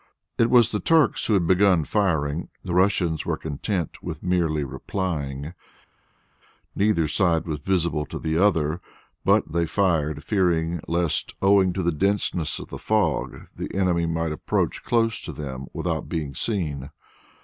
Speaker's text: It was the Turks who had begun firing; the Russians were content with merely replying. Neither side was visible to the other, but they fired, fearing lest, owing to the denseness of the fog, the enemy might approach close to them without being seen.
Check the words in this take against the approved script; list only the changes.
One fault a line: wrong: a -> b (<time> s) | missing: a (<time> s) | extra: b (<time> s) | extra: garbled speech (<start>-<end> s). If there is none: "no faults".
no faults